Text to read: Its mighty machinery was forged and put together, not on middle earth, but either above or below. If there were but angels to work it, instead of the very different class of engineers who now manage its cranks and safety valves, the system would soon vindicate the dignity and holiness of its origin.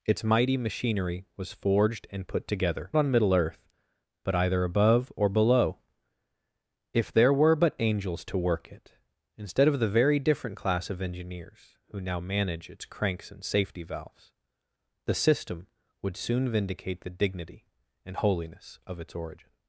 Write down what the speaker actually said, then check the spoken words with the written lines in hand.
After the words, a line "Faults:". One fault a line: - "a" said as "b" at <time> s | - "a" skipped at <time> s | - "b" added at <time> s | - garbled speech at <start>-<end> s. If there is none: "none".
Its mighty machinery was forged and put together, on middle earth, but either above or below. If there were but angels to work it, instead of the very different class of engineers who now manage its cranks and safety valves, the system would soon vindicate the dignity and holiness of its origin.
Faults:
- "not" skipped at 2.9 s